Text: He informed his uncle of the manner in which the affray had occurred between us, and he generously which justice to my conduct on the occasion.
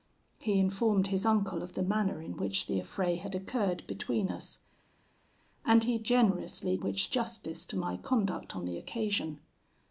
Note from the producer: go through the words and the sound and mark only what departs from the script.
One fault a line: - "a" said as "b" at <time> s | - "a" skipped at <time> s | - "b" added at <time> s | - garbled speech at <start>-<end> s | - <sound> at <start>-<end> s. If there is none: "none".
none